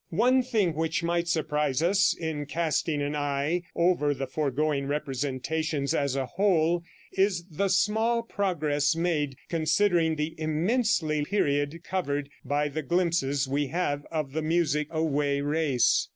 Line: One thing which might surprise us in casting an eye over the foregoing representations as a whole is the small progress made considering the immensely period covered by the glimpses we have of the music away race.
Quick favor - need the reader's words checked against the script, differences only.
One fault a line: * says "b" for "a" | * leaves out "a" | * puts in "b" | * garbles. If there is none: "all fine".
all fine